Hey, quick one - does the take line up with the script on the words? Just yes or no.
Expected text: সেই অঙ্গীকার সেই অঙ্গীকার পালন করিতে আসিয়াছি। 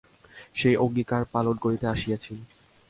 no